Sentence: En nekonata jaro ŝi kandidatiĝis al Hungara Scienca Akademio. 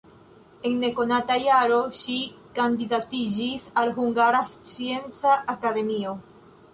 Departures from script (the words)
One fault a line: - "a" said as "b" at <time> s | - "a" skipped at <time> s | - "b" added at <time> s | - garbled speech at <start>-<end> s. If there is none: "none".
none